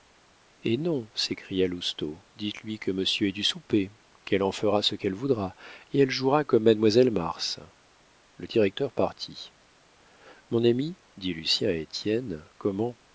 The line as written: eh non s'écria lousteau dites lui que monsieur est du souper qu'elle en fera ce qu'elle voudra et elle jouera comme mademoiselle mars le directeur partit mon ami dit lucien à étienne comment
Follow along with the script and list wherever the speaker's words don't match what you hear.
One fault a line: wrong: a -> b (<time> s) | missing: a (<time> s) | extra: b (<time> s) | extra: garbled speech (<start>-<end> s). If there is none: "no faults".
no faults